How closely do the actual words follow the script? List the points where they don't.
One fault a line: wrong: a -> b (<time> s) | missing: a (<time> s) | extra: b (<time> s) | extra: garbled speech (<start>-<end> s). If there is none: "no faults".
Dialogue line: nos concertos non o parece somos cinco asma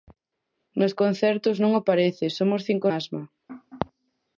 no faults